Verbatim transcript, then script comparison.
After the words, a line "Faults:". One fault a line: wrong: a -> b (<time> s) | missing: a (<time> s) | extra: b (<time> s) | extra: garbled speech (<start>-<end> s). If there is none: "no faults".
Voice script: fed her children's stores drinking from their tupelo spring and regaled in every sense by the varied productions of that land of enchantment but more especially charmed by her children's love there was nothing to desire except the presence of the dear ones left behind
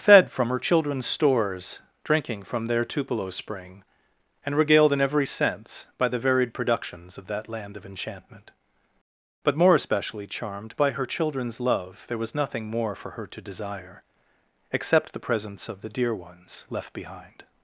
fed from her children's stores drinking from their tupelo spring and regaled in every sense by the varied productions of that land of enchantment but more especially charmed by her children's love there was nothing more for her to desire except the presence of the dear ones left behind
Faults:
extra: from (0.3 s)
extra: more for her (12.7 s)